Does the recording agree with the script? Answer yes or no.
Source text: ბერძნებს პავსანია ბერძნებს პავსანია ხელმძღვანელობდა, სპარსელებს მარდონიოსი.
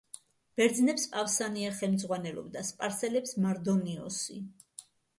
no